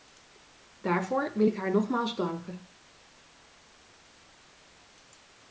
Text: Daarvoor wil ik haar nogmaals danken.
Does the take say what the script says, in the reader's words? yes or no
yes